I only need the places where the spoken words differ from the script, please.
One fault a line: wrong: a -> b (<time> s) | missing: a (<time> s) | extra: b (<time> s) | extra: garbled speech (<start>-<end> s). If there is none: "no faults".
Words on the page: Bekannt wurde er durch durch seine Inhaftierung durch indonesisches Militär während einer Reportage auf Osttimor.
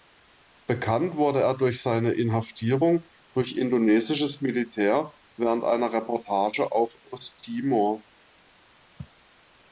missing: durch (1.8 s)